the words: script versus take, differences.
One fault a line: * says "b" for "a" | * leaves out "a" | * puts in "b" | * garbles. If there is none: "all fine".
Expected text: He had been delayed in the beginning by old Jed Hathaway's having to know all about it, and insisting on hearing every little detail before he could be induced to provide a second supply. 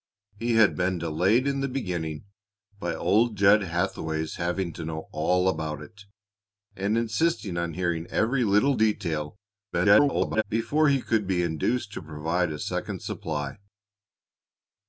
* garbles